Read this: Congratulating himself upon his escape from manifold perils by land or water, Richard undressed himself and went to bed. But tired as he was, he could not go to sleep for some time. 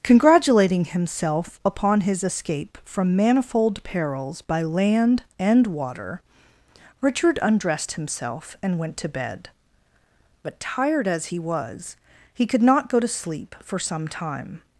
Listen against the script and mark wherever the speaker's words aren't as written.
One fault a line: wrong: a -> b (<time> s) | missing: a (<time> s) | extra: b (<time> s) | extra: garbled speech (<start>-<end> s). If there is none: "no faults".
wrong: or -> and (5.4 s)